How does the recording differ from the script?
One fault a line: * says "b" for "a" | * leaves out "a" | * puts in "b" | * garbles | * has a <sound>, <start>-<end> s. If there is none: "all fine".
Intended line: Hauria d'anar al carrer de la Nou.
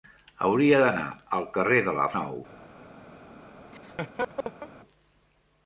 * has a laugh, 3.7-4.7 s